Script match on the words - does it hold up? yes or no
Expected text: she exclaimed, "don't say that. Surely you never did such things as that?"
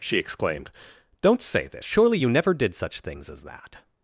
no